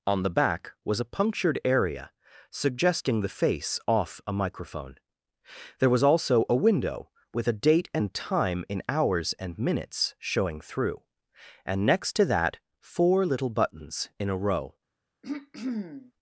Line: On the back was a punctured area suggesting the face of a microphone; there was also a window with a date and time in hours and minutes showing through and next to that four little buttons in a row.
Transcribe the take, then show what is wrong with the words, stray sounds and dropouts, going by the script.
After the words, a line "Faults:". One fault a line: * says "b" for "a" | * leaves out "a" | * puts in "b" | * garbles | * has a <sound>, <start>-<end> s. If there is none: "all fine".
On the back was a punctured area suggesting the face off a microphone; there was also a window with a date and time in hours and minutes showing through and next to that four little buttons in a row.
Faults:
* says "off" for "of"
* has a throat clearing, 15.2-16.1 s